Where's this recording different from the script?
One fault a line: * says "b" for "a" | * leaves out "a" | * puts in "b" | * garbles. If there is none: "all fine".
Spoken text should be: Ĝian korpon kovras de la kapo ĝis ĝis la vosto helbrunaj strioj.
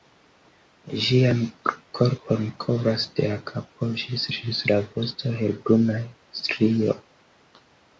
all fine